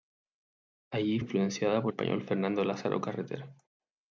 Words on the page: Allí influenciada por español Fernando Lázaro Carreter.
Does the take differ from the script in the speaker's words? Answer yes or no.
no